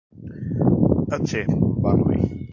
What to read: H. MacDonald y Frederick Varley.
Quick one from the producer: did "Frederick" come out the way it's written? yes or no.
no